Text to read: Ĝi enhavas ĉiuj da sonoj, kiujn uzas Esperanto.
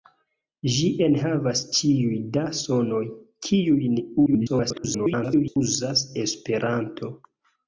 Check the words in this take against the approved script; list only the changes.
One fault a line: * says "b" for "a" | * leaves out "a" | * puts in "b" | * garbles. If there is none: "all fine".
* garbles